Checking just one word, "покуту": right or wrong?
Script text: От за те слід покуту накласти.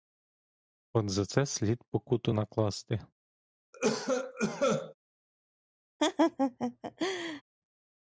right